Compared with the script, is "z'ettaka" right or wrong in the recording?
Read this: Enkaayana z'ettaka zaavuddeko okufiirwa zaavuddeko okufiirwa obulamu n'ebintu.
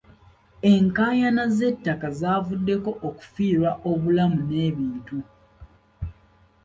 right